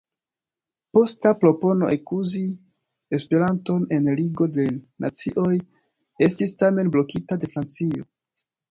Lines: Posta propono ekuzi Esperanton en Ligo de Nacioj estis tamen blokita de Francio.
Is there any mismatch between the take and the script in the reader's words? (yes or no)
no